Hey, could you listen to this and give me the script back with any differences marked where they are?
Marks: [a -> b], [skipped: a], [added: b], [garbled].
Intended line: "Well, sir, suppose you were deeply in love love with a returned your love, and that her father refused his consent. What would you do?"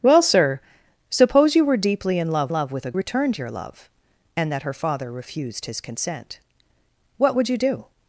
"Well, sir, suppose you were deeply in love love with a returned your love, and that her father refused his consent. What would you do?"